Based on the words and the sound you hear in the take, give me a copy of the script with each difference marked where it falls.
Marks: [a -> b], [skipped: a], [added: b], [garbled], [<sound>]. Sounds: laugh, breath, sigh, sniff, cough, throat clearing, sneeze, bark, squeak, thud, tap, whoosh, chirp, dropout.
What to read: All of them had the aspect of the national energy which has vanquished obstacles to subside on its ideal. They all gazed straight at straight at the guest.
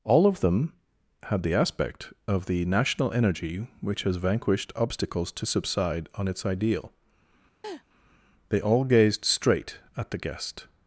All of them had the aspect of the national energy which has vanquished obstacles to subside on its ideal. [laugh] They all gazed straight at [skipped: straight at] the guest.